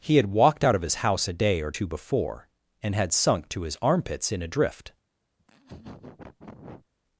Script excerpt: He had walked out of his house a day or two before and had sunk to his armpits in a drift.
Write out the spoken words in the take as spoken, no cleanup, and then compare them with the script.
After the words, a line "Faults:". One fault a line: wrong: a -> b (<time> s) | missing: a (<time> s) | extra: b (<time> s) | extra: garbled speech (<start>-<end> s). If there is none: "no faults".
He had walked out of his house a day or two before and had sunk to his armpits in a drift.
Faults:
no faults